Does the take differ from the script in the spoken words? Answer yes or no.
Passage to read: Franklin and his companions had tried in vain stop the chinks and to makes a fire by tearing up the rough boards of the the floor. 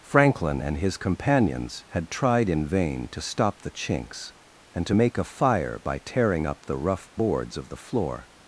yes